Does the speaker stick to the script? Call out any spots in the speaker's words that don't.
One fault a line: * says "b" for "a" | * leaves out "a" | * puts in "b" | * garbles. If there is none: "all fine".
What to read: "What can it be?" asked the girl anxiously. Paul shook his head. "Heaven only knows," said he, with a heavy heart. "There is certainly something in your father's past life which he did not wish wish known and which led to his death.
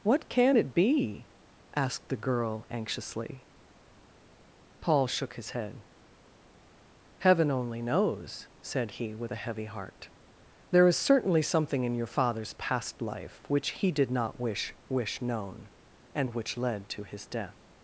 all fine